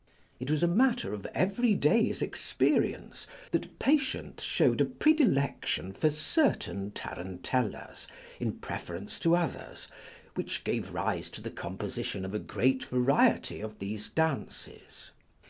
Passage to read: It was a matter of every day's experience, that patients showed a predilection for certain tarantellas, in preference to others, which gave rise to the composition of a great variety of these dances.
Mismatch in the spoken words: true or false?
false